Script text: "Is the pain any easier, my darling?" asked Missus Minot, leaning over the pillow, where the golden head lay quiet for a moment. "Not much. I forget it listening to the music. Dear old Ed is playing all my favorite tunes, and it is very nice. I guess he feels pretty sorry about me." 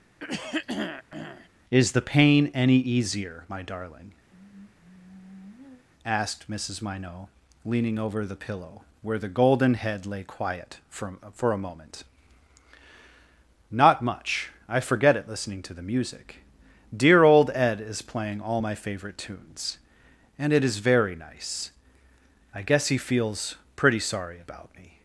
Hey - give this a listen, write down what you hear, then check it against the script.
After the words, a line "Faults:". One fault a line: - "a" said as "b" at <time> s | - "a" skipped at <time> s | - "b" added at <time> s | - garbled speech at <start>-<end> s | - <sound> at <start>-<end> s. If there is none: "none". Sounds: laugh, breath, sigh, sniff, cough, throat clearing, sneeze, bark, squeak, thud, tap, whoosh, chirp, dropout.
"Is the pain any easier, my darling?" asked Missus Minot, leaning over the pillow, where the golden head lay quiet for for a moment. "Not much. I forget it listening to the music. Dear old Ed is playing all my favorite tunes, and it is very nice. I guess he feels pretty sorry about me."
Faults:
- throat clearing at 0.2-1.5 s
- sigh at 4.3-5.9 s
- "for" added at 11.3 s